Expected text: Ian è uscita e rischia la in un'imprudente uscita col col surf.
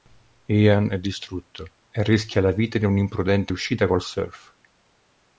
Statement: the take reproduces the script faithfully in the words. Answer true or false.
false